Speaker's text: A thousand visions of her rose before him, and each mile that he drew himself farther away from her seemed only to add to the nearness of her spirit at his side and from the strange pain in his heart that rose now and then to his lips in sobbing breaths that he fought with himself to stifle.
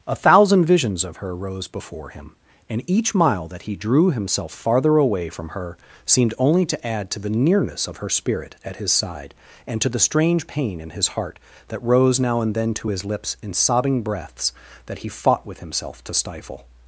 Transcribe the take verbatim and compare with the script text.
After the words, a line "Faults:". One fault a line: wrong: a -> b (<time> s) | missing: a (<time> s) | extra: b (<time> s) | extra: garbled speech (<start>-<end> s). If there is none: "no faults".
A thousand visions of her rose before him, and each mile that he drew himself farther away from her seemed only to add to the nearness of her spirit at his side and to the strange pain in his heart that rose now and then to his lips in sobbing breaths that he fought with himself to stifle.
Faults:
wrong: from -> to (9.8 s)